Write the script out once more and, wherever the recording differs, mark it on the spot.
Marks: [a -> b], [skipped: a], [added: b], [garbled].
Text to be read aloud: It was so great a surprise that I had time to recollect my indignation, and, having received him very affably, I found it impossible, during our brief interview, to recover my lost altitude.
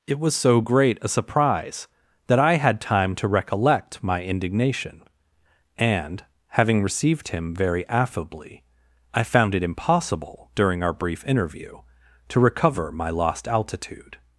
It was so great a surprise that I had time to recollect my indignation, and, having received him very affably, I found it impossible, during our brief interview, to recover my lost altitude.